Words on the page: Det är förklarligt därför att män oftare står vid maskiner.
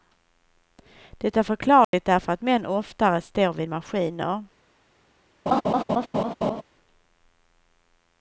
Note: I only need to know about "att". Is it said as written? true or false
true